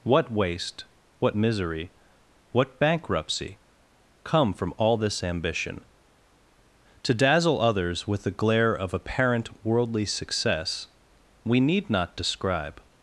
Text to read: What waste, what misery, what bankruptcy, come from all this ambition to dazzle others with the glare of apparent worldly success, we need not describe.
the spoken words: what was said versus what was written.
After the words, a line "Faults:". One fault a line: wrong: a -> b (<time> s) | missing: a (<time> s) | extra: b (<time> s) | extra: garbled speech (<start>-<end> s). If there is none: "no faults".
What waste, what misery, what bankruptcy, come from all this ambition to dazzle others with the glare of apparent worldly success, we need not describe.
Faults:
no faults